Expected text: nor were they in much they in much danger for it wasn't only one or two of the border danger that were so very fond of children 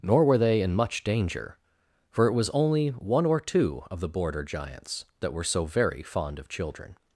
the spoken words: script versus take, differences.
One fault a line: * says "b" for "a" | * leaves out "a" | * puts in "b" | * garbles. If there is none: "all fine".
* leaves out "they in much"
* says "was" for "wasn't"
* says "giants" for "danger"